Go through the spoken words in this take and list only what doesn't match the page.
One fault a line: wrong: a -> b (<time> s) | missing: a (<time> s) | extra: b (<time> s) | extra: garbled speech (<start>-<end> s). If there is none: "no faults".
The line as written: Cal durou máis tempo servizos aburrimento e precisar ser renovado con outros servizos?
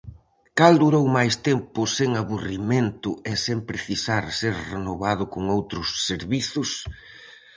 wrong: servizos -> sen (2.0 s)
extra: sen (3.5 s)